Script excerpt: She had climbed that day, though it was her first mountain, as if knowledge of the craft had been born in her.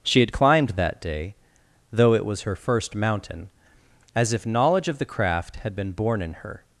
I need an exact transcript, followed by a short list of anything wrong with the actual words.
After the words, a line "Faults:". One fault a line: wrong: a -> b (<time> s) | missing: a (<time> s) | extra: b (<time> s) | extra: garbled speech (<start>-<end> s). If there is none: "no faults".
She had climbed that day, though it was her first mountain, as if knowledge of the craft had been born in her.
Faults:
no faults